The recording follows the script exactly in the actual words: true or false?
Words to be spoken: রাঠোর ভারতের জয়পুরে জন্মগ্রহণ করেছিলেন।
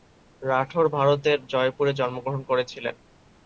true